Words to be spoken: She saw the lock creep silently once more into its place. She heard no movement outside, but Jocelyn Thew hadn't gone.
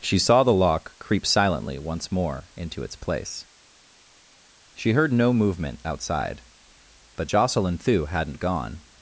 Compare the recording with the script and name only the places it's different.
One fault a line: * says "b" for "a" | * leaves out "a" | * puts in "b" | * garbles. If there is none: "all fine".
all fine